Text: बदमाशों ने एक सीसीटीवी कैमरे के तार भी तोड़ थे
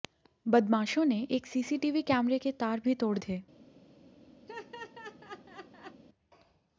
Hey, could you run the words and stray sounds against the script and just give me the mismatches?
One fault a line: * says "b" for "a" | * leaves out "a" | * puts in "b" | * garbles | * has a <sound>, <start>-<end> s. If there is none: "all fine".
* has a laugh, 4.5-6.0 s